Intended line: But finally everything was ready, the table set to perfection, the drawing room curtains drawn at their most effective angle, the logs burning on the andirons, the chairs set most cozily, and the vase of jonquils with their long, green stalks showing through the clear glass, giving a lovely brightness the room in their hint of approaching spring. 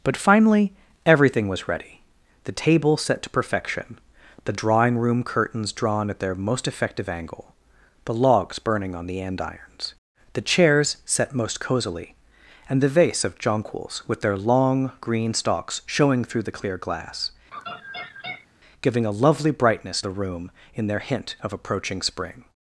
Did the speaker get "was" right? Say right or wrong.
right